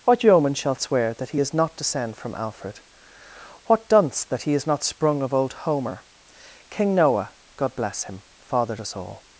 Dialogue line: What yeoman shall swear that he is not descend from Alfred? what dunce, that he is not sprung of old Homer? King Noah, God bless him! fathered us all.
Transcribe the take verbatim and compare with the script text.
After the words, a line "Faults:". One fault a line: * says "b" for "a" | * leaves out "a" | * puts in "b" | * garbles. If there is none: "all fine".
What yeoman shall swear that he is not descend from Alfred? what dunce, that he is not sprung of old Homer? King Noah, God bless him! fathered us all.
Faults:
all fine